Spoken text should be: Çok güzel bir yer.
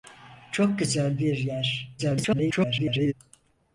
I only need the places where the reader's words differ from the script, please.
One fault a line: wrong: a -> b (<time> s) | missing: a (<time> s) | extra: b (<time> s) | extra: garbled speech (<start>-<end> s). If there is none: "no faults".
extra: garbled speech (2.0-3.1 s)